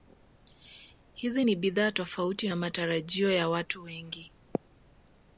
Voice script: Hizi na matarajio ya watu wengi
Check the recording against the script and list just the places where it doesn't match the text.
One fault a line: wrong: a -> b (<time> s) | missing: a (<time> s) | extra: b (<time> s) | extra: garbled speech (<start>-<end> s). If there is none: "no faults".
extra: ni bidhaa tofauti (1.4 s)